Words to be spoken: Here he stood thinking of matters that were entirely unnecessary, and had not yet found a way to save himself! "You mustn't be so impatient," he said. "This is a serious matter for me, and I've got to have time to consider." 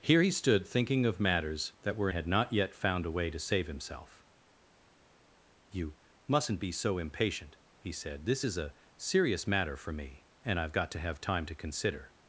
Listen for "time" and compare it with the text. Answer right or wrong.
right